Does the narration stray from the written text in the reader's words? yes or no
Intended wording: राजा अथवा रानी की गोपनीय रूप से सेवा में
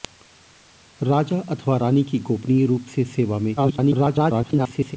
yes